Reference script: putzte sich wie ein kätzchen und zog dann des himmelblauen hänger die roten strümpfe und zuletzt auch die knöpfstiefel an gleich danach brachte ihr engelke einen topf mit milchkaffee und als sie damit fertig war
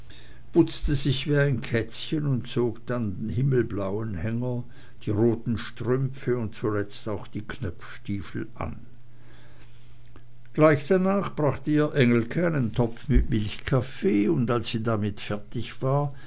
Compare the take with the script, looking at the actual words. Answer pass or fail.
fail